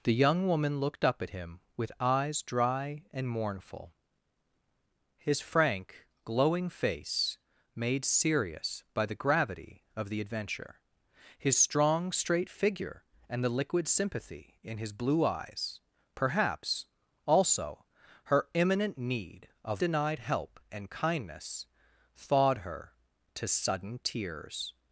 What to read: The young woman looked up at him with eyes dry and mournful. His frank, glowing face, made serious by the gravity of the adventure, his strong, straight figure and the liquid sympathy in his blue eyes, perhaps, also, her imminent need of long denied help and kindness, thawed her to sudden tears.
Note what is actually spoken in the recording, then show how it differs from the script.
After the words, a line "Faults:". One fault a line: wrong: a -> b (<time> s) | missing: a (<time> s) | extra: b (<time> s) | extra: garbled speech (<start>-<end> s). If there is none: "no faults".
The young woman looked up at him with eyes dry and mournful. His frank, glowing face, made serious by the gravity of the adventure, his strong, straight figure and the liquid sympathy in his blue eyes, perhaps, also, her imminent need of denied help and kindness, thawed her to sudden tears.
Faults:
missing: long (19.8 s)